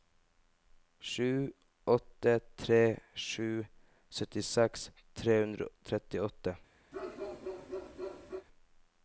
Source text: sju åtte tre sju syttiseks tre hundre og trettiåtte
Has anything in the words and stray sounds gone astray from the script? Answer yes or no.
yes